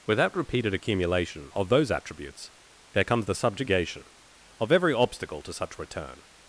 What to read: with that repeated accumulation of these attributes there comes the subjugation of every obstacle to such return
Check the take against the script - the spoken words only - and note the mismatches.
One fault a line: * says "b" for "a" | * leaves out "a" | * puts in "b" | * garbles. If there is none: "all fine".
* says "those" for "these"